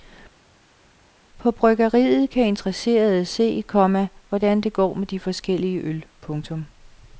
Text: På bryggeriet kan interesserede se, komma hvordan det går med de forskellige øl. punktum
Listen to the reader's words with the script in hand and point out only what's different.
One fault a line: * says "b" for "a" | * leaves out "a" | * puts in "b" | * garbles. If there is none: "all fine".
all fine